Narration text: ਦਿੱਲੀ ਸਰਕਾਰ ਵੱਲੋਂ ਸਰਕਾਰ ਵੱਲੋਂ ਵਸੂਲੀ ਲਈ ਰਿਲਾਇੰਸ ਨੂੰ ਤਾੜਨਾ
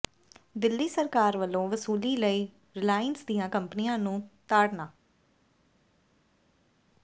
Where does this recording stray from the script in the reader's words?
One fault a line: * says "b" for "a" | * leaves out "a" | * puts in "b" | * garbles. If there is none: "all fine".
* leaves out "ਸਰਕਾਰ ਵੱਲੋਂ"
* puts in "ਦੀਆਂ ਕੰਪਨੀਆਂ"